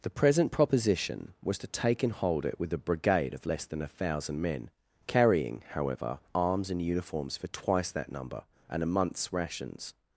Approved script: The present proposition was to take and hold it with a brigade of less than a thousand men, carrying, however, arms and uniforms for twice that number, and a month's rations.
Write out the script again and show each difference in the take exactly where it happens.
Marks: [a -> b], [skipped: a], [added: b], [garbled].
The present proposition was to take and hold it with a brigade of less than a thousand men, carrying, however, arms and uniforms for twice that number, and a month's rations.